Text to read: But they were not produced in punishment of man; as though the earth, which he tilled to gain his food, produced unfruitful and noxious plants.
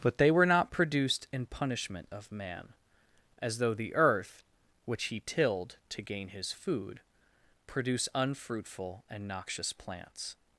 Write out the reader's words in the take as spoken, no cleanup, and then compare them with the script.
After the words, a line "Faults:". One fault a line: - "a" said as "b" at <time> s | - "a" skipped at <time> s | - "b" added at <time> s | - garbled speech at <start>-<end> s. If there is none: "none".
But they were not produced in punishment of man; as though the earth, which he tilled to gain his food, produce unfruitful and noxious plants.
Faults:
- "produced" said as "produce" at 7.7 s